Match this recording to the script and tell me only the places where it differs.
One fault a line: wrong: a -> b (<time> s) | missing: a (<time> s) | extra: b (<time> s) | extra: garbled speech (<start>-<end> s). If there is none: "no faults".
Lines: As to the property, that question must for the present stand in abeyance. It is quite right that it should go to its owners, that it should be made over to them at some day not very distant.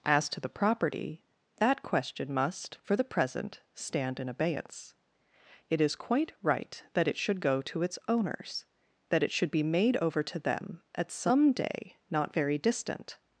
no faults